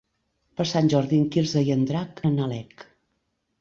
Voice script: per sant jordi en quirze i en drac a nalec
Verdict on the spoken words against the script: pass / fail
pass